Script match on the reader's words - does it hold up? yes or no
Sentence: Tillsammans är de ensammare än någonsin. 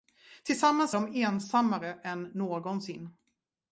no